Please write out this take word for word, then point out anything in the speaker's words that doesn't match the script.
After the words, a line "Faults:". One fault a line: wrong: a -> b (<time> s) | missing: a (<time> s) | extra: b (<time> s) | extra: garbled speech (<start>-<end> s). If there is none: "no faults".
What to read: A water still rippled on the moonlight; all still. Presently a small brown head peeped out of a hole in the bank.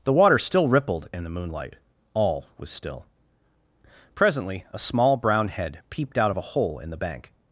The water still rippled in the moonlight; all was still. Presently a small brown head peeped out of a hole in the bank.
Faults:
wrong: A -> The (0.0 s)
wrong: on -> in (1.1 s)
extra: was (2.6 s)